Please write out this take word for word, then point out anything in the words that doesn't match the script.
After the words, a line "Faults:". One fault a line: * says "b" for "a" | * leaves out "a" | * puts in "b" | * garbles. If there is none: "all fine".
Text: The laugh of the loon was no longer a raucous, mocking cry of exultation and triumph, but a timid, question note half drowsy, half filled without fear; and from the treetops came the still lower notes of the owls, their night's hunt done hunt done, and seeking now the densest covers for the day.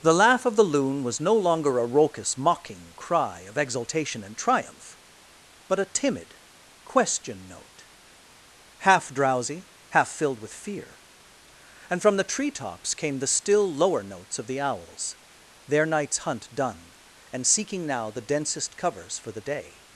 The laugh of the loon was no longer a raucous, mocking cry of exultation and triumph, but a timid, question note half drowsy, half filled with fear; and from the treetops came the still lower notes of the owls, their night's hunt done, and seeking now the densest covers for the day.
Faults:
* says "with" for "without"
* leaves out "hunt done"